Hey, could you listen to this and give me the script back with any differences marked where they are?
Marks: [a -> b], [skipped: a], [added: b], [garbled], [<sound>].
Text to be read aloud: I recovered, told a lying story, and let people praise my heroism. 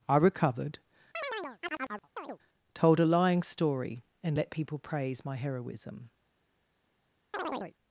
I recovered, [chirp] told a lying story, and let people praise my heroism. [chirp]